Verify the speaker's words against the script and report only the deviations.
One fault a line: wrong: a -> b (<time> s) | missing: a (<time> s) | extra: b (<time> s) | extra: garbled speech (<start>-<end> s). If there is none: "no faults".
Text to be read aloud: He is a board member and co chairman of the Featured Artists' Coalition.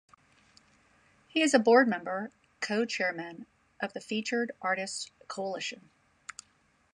missing: and (2.3 s)